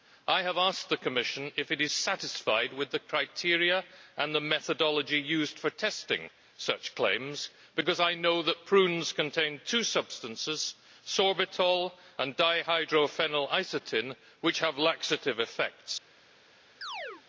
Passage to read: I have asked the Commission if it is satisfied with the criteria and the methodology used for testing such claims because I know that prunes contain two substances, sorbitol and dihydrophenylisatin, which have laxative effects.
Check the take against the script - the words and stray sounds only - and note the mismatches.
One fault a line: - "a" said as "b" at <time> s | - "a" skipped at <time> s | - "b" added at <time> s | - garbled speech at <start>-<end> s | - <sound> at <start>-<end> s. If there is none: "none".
- chirp at 16.8-17.2 s